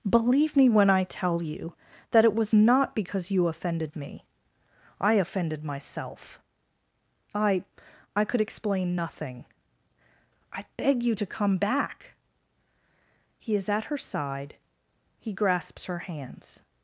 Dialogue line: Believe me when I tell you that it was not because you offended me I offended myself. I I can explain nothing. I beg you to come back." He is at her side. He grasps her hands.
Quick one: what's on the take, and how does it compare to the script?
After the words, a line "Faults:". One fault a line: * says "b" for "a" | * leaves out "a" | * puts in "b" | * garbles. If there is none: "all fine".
Believe me when I tell you that it was not because you offended me I offended myself. I I could explain nothing. I beg you to come back." He is at her side. He grasps her hands.
Faults:
* says "could" for "can"